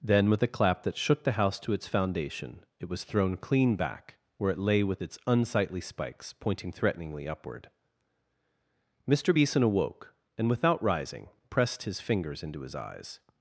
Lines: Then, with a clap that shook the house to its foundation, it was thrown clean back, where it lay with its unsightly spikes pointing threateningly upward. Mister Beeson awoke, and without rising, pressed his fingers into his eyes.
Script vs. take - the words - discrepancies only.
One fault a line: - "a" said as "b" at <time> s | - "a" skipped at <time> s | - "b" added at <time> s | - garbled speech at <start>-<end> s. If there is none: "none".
none